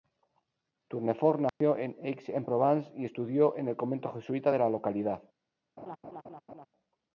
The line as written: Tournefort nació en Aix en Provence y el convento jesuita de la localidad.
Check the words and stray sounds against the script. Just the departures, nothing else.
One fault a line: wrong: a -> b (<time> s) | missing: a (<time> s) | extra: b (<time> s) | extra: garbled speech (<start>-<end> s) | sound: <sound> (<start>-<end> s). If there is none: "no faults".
sound: dropout (1.5-1.6 s)
extra: estudió en (3.0 s)
sound: laugh (5.8-6.7 s)